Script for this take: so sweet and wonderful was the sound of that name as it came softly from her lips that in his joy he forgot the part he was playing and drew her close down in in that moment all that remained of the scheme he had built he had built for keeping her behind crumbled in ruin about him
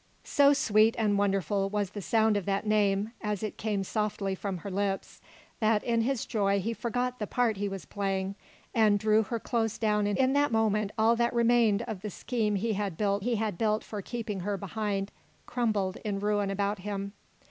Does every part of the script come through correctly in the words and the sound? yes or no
yes